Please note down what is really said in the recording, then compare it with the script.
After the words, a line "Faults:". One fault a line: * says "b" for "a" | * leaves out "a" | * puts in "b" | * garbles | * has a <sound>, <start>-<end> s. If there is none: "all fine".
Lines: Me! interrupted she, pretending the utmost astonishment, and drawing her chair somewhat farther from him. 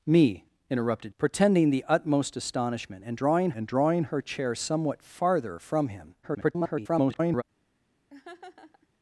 Me! interrupted pretending the utmost astonishment, and drawing and drawing her chair somewhat farther from him. [garbled]
Faults:
* leaves out "she"
* puts in "and drawing"
* garbles
* has a laugh, 8.1-8.9 s